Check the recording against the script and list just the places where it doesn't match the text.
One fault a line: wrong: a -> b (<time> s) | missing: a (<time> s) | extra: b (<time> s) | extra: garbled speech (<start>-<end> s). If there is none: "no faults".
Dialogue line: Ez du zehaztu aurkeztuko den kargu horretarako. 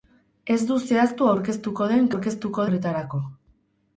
wrong: kargu -> aurkeztuko (2.1 s)